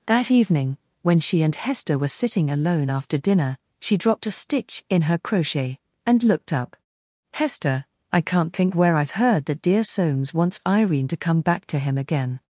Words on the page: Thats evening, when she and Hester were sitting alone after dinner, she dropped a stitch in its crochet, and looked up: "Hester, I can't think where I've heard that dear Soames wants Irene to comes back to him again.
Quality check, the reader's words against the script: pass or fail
fail